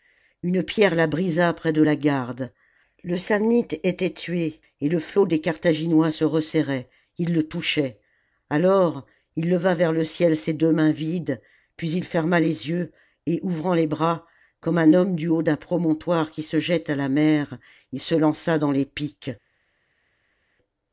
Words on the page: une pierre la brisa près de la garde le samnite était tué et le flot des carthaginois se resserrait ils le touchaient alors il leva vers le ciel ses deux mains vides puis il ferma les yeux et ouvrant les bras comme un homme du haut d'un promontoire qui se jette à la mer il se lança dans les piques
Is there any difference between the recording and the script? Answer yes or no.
no